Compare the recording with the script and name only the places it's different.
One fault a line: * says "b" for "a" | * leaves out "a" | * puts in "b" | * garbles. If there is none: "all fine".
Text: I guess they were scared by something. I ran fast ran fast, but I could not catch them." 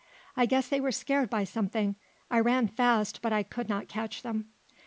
* leaves out "ran fast"